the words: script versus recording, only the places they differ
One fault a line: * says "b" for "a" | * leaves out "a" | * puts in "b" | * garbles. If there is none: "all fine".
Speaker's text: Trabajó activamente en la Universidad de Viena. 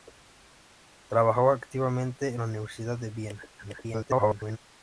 * garbles